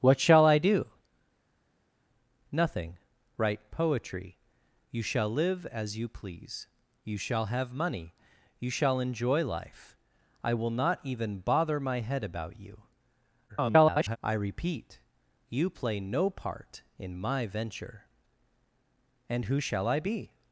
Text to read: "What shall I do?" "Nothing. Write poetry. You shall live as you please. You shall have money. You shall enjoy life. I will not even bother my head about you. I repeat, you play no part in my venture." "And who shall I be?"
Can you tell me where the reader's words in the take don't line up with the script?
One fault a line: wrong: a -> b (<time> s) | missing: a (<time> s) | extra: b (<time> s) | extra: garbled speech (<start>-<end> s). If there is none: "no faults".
extra: garbled speech (13.5-14.2 s)